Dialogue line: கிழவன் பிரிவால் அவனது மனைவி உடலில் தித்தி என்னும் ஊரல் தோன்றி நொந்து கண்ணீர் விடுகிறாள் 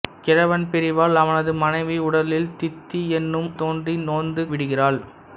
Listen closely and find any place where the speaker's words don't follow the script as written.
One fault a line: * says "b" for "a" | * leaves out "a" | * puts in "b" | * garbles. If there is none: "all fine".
* leaves out "ஊரல்"
* leaves out "கண்ணீர்"